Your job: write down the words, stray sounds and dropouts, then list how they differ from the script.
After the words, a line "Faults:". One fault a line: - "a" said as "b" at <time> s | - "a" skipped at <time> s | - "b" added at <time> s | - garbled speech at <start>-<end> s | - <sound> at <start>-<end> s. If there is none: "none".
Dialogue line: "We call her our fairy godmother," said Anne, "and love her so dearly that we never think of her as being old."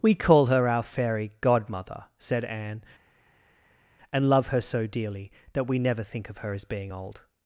"We call her our fairy godmother," said Anne, "and love her so dearly that we never think of her as being old."
Faults:
none